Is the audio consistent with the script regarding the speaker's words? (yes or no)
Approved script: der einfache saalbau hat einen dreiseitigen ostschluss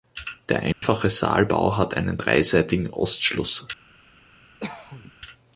yes